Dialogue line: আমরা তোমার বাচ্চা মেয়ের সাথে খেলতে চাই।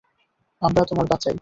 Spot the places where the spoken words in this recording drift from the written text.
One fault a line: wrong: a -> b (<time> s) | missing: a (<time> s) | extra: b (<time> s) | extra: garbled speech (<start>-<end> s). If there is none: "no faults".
missing: মেয়ের সাথে খেলতে (1.3 s)